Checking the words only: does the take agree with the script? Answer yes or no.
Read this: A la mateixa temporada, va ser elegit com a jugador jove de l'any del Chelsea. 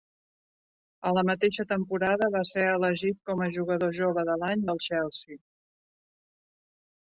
yes